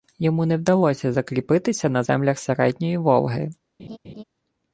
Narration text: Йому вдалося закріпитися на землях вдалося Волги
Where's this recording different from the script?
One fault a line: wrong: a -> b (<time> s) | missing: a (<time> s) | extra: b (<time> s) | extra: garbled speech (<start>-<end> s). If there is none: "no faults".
extra: не (0.5 s)
wrong: вдалося -> середньої (2.4 s)